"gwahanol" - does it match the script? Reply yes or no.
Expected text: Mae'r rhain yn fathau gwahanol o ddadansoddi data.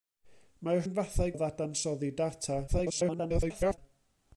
no